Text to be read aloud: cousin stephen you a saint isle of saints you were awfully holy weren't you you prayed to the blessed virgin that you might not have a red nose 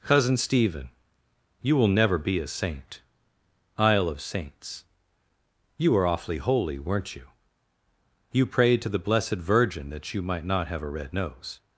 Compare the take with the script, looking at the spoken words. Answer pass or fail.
fail